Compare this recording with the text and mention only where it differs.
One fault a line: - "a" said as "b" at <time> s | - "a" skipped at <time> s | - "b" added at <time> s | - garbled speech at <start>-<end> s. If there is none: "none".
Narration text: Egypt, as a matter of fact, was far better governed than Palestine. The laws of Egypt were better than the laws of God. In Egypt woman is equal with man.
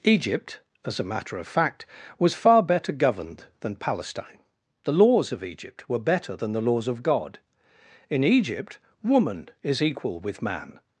none